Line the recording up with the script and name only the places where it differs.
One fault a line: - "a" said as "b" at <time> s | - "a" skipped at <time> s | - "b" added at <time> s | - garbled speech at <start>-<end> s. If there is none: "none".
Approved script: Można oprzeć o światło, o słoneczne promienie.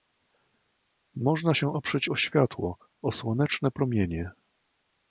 - "się" added at 1.5 s